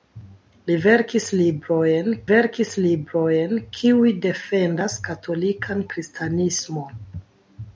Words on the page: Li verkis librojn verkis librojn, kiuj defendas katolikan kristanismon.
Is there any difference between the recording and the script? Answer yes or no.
no